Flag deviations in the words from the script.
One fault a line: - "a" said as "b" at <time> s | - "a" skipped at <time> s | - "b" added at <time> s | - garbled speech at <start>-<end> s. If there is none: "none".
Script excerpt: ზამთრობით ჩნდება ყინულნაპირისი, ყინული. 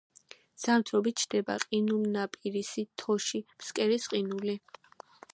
- "თოში ფსკერის" added at 3.0 s